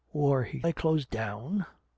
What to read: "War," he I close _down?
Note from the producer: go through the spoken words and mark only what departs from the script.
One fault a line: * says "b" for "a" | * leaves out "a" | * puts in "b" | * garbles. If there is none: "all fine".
all fine